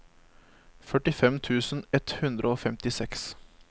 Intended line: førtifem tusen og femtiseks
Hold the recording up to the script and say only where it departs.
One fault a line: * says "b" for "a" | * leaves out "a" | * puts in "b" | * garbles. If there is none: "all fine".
* puts in "ett hundre"